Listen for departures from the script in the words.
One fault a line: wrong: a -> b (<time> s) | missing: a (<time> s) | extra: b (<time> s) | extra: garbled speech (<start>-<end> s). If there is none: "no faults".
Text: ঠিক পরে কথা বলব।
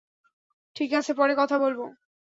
extra: আছে (0.9 s)